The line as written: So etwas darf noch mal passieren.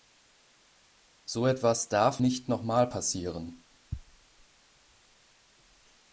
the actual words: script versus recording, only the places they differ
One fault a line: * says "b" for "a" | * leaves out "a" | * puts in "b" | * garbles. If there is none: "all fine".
* puts in "nicht"